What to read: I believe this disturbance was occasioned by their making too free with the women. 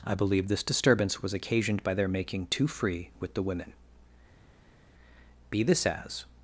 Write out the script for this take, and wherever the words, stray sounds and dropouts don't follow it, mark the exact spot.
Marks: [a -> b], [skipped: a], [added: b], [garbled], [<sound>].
I believe this disturbance was occasioned by their making too free with the women. [added: Be this as]